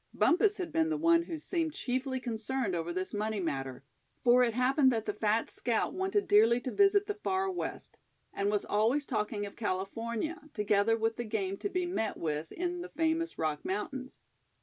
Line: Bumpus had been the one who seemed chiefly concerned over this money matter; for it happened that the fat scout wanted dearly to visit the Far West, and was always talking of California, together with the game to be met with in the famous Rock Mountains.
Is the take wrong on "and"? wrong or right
right